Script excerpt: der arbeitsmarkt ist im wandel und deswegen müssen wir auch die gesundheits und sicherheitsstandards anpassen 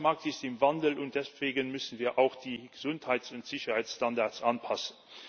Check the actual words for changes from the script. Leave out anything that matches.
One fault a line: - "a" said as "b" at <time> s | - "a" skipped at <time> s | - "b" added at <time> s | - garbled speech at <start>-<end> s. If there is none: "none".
none